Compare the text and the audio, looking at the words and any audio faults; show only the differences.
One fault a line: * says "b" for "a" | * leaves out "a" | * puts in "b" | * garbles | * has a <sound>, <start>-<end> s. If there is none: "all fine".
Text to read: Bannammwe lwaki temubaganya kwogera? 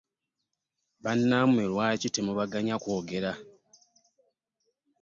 all fine